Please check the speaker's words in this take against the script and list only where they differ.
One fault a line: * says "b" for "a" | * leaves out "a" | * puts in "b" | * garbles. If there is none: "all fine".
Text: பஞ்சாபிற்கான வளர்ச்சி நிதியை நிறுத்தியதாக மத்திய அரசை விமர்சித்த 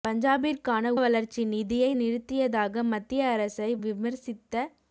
all fine